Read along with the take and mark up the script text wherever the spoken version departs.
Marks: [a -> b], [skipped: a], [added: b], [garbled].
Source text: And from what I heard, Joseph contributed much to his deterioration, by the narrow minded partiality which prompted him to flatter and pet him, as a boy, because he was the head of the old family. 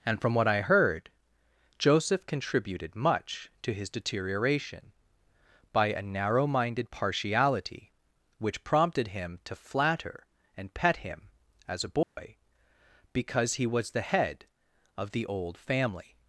And from what I heard, Joseph contributed much to his deterioration, by [the -> a] narrow minded partiality which prompted him to flatter and pet him, as a boy, because he was the head of the old family.